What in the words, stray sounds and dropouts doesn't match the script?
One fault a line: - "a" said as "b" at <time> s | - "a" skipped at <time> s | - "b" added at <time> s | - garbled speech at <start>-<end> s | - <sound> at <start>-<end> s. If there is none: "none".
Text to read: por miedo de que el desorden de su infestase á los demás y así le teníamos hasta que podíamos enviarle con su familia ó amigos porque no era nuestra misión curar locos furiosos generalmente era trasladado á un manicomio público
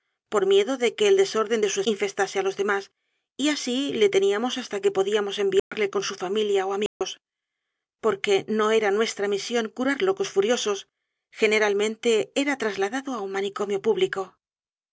- dropout at 5.6-5.7 s
- dropout at 6.9-7.0 s